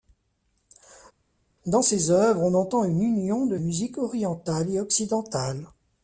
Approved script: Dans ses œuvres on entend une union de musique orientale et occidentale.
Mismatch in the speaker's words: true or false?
false